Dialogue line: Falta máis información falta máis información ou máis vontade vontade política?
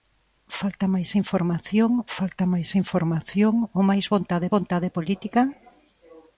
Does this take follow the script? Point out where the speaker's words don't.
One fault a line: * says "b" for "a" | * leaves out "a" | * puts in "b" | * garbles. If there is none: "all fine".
all fine